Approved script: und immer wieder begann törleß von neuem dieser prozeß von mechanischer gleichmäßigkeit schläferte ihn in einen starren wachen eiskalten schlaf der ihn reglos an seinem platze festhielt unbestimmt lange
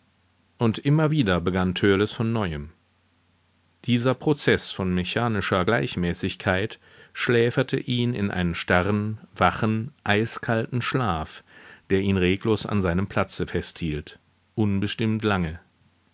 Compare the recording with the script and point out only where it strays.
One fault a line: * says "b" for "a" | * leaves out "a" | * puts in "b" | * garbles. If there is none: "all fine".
all fine